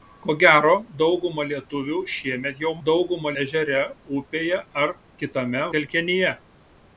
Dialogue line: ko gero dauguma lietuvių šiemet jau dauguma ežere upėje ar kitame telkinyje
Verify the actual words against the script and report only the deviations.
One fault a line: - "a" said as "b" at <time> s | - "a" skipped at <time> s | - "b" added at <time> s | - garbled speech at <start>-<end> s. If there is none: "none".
none